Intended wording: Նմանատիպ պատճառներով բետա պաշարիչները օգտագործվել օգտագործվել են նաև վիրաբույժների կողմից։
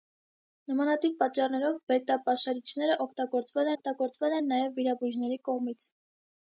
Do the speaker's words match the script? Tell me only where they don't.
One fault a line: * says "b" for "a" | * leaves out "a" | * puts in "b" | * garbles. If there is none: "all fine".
all fine